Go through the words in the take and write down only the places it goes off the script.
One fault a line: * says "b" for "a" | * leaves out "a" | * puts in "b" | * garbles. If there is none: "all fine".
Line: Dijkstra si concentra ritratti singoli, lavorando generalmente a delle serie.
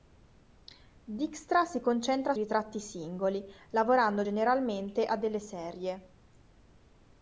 all fine